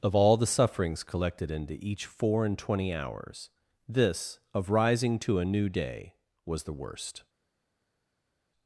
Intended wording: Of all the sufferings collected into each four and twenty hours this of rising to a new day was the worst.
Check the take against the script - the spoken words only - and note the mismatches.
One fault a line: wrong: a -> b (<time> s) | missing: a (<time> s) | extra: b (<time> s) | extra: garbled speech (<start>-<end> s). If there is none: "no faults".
no faults